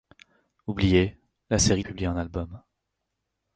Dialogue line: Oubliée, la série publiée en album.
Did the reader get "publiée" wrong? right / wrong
right